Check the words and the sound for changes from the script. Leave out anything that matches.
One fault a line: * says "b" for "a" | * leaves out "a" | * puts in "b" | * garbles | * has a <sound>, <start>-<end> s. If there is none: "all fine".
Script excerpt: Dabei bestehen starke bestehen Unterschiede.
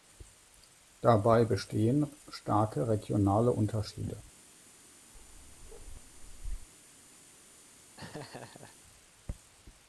* says "regionale" for "bestehen"
* has a bark, 5.1-6.7 s
* has a laugh, 8.0-8.8 s